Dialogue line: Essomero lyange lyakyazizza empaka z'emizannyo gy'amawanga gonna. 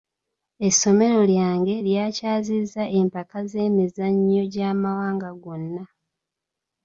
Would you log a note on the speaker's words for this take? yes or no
no